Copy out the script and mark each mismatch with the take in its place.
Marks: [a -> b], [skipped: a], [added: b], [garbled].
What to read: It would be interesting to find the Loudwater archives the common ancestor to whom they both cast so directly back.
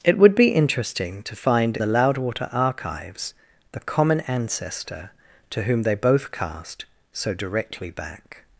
It would be interesting to find the Loudwater archives the common ancestor to whom they both cast so directly back.